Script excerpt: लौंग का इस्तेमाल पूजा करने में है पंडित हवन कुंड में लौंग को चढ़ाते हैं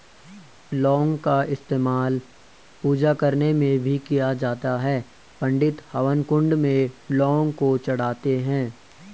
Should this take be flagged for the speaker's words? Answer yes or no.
yes